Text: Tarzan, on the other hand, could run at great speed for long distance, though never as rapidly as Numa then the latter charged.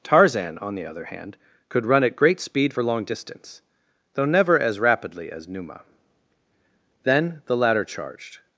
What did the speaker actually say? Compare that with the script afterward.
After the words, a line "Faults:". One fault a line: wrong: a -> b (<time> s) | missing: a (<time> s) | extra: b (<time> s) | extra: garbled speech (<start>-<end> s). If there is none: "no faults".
Tarzan, on the other hand, could run at great speed for long distance, though never as rapidly as Numa then the latter charged.
Faults:
no faults